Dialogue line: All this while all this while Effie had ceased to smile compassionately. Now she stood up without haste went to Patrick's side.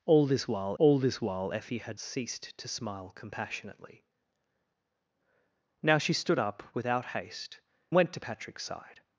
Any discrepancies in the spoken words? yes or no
no